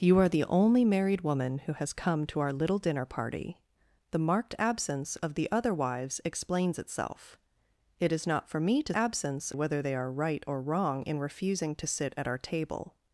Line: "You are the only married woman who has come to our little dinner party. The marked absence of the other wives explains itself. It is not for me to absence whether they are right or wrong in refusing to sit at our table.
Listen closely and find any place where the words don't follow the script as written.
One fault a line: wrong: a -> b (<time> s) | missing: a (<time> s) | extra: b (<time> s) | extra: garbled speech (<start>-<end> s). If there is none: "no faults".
no faults